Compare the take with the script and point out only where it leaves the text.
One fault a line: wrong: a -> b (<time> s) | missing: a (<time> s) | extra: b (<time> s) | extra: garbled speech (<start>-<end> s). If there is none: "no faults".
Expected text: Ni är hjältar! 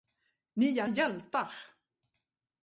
no faults